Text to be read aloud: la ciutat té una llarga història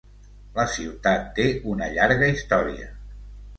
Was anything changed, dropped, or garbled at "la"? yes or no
no